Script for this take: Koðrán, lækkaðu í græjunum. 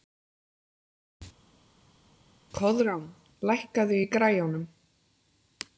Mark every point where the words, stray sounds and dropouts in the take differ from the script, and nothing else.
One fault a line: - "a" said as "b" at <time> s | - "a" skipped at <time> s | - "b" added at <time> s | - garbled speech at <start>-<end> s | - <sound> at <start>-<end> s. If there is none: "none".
none